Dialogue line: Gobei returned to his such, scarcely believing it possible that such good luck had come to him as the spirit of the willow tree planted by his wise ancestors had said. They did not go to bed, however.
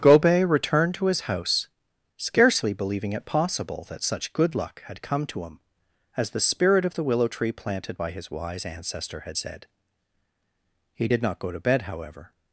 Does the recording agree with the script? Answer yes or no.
no